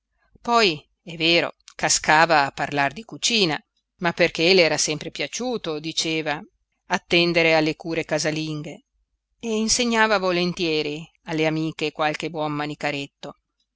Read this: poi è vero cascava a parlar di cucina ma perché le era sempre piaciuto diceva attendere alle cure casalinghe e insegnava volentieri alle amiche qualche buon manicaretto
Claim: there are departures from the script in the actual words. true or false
false